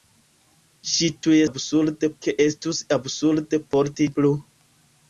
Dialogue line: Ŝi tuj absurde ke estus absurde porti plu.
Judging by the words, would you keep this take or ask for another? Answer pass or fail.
pass